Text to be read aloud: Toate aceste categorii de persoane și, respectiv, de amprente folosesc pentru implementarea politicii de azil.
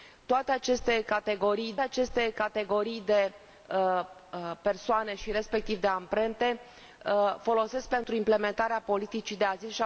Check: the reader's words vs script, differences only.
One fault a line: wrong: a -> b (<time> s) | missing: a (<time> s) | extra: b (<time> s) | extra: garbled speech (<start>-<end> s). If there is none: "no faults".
extra: aceste categorii (1.8 s)